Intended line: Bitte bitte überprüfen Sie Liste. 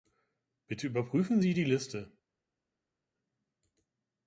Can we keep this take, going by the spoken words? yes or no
no